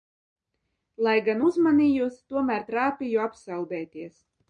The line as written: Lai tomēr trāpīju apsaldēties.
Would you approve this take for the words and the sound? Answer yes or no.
no